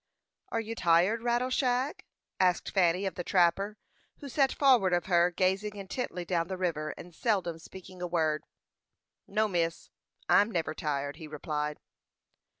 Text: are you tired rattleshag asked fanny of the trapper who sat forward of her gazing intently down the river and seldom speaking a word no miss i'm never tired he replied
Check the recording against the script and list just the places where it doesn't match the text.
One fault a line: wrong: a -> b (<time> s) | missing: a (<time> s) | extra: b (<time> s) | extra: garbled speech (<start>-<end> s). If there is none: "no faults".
no faults